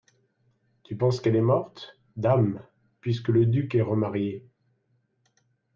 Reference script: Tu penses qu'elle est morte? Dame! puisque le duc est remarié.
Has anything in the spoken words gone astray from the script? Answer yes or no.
no